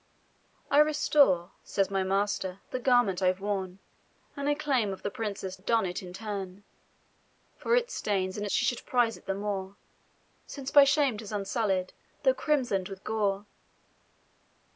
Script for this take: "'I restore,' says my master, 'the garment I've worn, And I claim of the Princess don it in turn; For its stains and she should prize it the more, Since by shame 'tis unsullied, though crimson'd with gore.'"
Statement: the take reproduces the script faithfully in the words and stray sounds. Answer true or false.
true